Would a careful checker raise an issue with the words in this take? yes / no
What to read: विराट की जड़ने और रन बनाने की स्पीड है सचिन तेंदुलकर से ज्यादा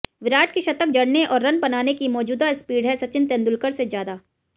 yes